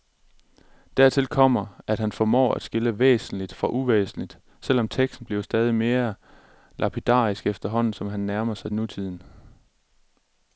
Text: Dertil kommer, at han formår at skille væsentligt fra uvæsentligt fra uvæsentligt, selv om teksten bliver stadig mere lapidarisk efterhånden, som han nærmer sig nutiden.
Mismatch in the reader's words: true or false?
true